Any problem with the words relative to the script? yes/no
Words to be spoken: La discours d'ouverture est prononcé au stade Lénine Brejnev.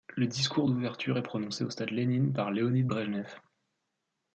yes